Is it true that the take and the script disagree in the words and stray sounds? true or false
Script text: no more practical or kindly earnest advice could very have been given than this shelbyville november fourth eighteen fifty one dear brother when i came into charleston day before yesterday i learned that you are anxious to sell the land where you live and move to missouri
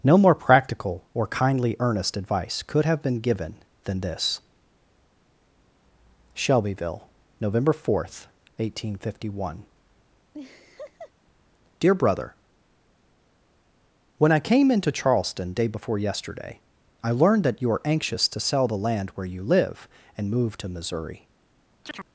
true